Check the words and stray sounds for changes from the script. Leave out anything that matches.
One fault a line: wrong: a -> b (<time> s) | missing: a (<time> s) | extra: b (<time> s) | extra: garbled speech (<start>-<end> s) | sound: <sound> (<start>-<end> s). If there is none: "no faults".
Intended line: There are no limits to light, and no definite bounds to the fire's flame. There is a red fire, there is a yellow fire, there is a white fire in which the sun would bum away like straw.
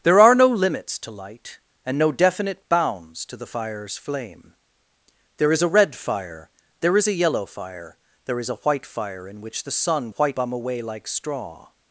wrong: would -> white (10.1 s)